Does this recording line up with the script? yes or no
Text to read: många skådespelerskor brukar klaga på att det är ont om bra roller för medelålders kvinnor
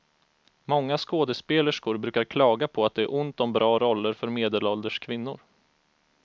yes